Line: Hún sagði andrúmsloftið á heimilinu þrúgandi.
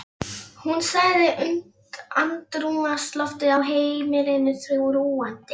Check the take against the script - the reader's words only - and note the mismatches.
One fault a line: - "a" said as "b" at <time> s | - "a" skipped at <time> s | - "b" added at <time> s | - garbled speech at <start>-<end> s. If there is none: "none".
none